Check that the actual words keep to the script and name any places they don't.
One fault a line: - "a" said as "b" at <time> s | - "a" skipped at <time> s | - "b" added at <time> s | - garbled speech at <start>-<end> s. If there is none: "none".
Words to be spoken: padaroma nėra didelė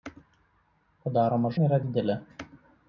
none